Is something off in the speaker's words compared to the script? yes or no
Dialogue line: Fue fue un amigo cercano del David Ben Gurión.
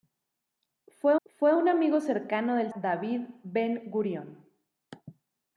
no